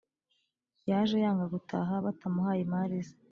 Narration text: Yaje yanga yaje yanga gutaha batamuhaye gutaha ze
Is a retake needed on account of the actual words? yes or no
yes